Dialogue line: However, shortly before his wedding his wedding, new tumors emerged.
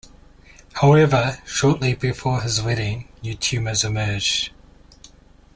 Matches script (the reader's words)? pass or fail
fail